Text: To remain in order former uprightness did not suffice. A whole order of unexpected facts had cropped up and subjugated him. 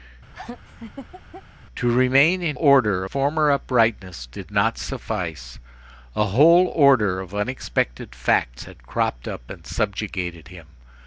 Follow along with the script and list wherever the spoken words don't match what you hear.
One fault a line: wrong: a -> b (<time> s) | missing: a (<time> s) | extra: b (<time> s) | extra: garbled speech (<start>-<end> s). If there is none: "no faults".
no faults